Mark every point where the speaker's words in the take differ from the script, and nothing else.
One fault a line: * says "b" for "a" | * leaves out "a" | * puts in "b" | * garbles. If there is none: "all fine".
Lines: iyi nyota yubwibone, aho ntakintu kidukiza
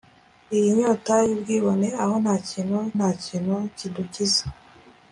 * puts in "ntakintu"